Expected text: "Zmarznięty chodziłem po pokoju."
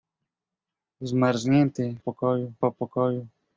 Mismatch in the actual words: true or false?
true